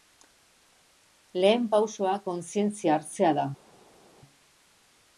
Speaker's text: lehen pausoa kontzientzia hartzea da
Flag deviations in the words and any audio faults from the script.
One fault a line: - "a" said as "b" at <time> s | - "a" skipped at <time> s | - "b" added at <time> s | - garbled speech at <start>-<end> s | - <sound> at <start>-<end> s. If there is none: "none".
none